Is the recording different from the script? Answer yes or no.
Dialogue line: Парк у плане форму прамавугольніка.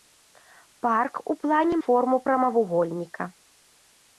no